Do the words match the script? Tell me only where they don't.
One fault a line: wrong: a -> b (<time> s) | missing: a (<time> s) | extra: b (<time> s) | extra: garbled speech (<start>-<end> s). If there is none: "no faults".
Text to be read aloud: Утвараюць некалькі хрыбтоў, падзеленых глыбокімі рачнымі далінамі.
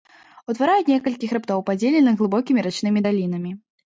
no faults